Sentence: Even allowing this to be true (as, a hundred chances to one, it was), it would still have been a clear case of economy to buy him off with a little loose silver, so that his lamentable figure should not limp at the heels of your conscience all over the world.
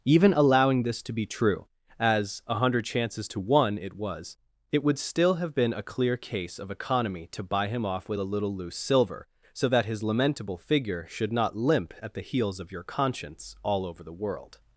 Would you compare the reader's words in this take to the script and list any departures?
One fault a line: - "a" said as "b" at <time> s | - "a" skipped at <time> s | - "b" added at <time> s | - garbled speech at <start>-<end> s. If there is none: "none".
none